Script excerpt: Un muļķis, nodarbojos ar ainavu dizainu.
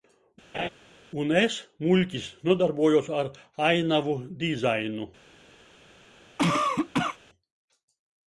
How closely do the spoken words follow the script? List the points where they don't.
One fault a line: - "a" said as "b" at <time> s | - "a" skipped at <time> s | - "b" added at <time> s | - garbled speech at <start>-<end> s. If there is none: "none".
- "es" added at 1.4 s